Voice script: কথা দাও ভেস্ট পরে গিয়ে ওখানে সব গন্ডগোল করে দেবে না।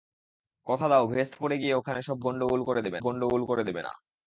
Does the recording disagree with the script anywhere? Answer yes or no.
yes